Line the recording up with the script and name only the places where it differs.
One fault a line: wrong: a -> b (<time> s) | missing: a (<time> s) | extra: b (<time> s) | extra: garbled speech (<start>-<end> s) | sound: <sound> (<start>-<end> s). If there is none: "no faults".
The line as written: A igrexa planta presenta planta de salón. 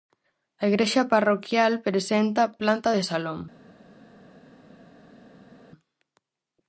wrong: planta -> parroquial (1.1 s)